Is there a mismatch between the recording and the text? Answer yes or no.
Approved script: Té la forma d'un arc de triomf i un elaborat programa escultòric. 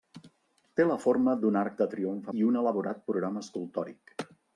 no